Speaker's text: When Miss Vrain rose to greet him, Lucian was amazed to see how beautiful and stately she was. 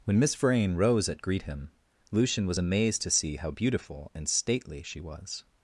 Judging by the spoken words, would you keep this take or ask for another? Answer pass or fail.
fail